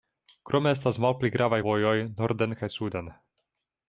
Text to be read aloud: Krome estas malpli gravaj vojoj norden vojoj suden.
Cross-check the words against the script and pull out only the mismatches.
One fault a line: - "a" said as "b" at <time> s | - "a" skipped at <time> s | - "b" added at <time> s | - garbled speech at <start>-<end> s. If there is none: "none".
- "vojoj" said as "kaj" at 2.6 s